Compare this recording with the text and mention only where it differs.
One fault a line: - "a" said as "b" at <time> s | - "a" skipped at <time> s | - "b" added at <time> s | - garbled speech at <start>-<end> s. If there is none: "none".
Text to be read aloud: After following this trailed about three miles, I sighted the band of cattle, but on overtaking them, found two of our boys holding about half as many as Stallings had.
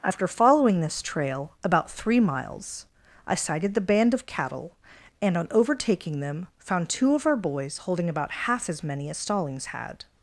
- "trailed" said as "trail" at 1.0 s
- "but" said as "and" at 5.2 s